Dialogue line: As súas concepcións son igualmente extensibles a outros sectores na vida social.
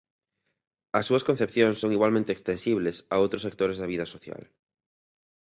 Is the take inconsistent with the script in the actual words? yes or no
yes